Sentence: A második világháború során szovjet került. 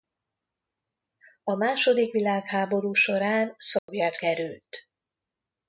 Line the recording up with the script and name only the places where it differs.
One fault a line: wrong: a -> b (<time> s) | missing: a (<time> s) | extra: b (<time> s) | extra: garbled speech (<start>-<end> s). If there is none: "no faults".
no faults